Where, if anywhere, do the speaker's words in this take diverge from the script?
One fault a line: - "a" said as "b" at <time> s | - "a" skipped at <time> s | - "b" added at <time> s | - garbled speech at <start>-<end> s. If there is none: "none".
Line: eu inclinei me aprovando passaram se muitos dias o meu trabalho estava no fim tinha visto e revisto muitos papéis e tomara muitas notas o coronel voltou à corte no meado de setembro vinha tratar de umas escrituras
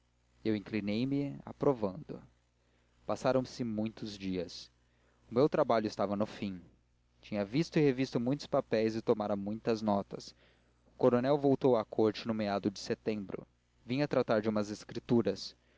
none